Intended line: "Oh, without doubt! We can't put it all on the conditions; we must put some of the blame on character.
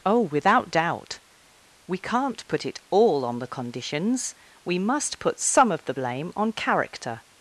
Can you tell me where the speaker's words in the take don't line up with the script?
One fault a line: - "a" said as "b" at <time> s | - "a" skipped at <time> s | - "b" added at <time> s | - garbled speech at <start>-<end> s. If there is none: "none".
none